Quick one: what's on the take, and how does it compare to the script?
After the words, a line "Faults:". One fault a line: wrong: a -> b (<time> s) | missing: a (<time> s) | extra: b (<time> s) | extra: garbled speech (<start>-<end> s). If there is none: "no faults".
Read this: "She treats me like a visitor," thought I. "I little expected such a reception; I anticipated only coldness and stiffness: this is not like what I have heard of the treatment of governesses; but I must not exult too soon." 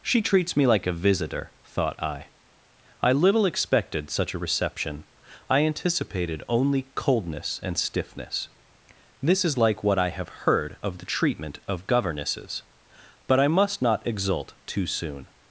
"She treats me like a visitor," thought I. "I little expected such a reception; I anticipated only coldness and stiffness: this is like what I have heard of the treatment of governesses; but I must not exult too soon."
Faults:
missing: not (9.6 s)